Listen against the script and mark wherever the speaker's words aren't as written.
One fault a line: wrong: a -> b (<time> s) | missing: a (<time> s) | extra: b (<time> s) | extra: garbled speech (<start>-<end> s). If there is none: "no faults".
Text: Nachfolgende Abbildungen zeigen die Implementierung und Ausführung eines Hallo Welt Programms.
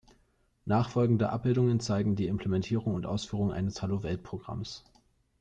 no faults